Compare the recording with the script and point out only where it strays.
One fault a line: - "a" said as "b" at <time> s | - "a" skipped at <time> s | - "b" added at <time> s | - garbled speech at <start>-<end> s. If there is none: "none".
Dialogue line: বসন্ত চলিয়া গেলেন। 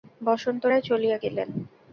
- "রায়" added at 0.7 s